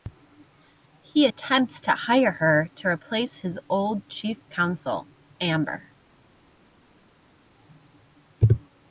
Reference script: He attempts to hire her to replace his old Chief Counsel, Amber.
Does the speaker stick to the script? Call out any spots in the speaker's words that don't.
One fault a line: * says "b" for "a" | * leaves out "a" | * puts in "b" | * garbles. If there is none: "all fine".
all fine